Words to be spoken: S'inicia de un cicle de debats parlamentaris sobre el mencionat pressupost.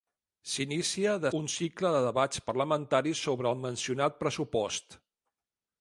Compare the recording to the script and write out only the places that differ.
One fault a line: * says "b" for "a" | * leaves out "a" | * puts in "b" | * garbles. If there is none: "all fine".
all fine